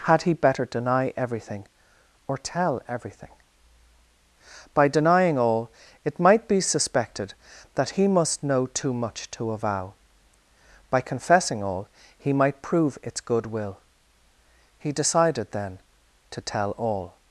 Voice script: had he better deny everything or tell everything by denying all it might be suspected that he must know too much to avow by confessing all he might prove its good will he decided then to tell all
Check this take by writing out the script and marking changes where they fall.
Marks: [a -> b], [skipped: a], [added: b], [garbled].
had he better deny everything or tell everything by denying all it might be suspected that he must know too much to avow by confessing all he might prove its good will he decided then to tell all